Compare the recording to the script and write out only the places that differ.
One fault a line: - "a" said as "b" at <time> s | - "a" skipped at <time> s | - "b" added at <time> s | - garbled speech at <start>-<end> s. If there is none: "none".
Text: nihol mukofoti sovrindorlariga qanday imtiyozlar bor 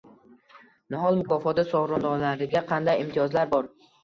none